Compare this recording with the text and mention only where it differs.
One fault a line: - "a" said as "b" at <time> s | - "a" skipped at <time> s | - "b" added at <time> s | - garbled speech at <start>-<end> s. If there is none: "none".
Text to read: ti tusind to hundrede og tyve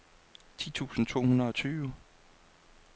none